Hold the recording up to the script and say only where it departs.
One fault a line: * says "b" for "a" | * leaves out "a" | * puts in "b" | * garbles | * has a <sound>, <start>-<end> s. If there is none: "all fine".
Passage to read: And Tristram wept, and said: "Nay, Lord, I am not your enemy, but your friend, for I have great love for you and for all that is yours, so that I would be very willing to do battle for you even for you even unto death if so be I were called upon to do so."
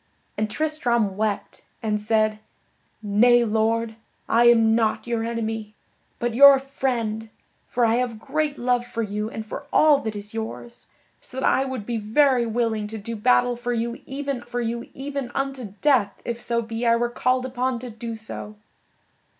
all fine